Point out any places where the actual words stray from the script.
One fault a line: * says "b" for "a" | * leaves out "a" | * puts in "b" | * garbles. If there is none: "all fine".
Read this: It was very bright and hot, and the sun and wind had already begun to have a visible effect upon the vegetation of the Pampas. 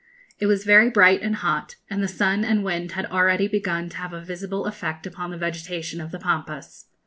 all fine